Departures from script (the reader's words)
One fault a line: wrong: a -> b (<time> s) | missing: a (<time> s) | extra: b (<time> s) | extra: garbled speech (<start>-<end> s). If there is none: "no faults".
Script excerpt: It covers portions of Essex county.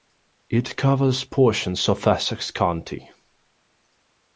no faults